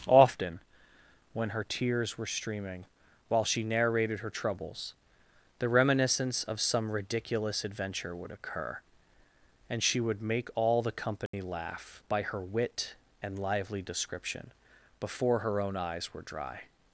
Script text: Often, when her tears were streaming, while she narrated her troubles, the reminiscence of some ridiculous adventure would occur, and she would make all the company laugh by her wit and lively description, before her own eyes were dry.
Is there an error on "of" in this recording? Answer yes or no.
no